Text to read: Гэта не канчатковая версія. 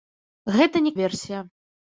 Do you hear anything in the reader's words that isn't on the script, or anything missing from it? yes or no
yes